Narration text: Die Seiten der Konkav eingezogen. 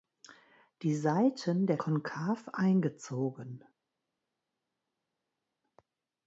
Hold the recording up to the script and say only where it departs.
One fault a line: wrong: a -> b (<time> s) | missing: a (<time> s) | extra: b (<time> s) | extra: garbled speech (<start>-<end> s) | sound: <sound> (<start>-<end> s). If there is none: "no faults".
no faults